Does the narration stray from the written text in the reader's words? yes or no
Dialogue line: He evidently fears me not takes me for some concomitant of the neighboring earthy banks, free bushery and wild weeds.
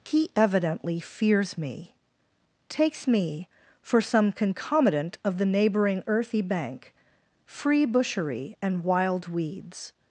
yes